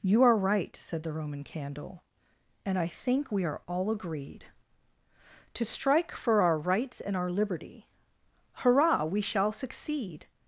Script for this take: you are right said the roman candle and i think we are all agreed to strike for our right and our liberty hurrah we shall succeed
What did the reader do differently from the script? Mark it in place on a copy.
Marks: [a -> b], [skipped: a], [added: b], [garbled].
you are right said the roman candle and i think we are all agreed to strike for our [right -> rights] and our liberty hurrah we shall succeed